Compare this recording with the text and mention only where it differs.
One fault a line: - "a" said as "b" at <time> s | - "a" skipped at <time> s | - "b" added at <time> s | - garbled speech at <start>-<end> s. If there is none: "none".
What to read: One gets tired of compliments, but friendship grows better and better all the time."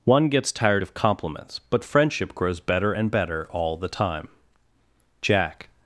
- "Jack" added at 5.2 s